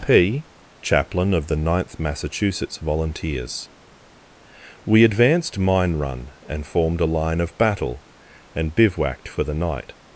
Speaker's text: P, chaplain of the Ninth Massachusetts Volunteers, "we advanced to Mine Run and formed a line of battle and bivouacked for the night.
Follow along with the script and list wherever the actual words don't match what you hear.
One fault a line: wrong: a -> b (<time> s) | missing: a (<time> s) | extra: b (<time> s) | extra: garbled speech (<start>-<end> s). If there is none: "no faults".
missing: to (5.6 s)